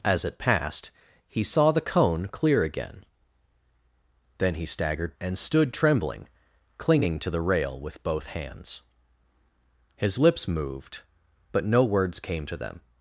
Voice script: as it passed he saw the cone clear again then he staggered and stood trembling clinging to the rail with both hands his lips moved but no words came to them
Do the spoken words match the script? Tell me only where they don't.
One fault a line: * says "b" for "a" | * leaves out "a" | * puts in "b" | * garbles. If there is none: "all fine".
all fine